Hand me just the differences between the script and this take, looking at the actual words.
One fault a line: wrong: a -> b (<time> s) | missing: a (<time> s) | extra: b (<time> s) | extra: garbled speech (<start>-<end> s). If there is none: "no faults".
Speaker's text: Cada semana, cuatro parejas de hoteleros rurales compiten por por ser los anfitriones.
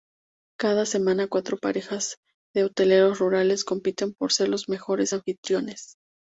missing: por (4.3 s)
extra: mejores (4.7 s)